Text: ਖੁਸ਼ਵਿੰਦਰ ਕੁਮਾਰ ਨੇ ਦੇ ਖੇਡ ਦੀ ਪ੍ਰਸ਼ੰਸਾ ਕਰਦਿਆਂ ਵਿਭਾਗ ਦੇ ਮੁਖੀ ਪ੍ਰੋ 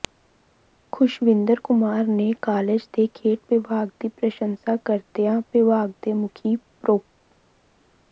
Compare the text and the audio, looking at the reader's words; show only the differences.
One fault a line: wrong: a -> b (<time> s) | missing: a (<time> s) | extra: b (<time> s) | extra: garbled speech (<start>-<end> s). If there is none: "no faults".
extra: ਕਾਲਜ (2.4 s)
extra: ਵਿਭਾਗ (3.5 s)